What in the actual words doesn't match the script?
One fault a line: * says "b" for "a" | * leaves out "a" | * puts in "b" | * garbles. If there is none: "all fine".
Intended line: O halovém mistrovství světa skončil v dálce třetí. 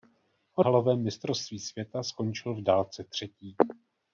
all fine